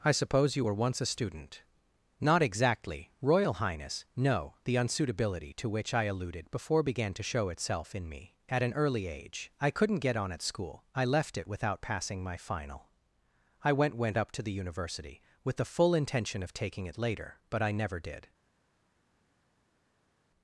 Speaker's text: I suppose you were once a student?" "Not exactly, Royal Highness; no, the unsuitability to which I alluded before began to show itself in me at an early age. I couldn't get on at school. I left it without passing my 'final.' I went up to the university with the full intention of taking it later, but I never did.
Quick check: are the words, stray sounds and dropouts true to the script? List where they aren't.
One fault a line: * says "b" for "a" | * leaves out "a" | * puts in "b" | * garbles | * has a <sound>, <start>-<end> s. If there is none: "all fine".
* puts in "went"